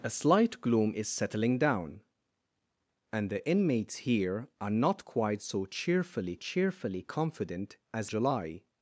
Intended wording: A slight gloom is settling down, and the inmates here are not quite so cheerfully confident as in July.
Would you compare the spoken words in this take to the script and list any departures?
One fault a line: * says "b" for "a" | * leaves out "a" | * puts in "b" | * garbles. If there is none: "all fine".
* puts in "cheerfully"
* leaves out "in"